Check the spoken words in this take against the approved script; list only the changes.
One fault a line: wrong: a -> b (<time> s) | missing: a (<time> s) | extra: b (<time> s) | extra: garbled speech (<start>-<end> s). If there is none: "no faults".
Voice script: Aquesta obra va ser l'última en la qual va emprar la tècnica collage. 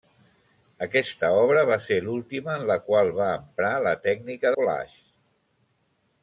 no faults